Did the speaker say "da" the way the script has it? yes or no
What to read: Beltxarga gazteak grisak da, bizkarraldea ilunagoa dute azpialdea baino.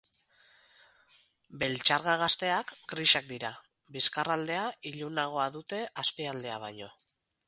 no